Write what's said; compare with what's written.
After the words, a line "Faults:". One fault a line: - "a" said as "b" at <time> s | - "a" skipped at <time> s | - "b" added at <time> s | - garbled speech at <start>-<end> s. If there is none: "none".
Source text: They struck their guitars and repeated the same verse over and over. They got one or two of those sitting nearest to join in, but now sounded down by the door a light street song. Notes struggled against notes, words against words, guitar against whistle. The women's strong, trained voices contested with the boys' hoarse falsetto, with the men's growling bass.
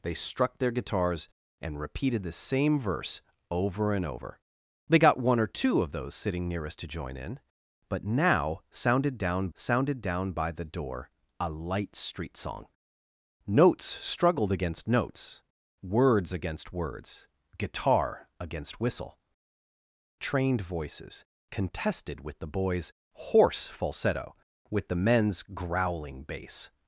They struck their guitars and repeated the same verse over and over. They got one or two of those sitting nearest to join in, but now sounded down sounded down by the door a light street song. Notes struggled against notes, words against words, guitar against whistle. Trained voices contested with the boys' hoarse falsetto, with the men's growling bass.
Faults:
- "sounded down" added at 9.5 s
- "The women's strong" skipped at 19.2 s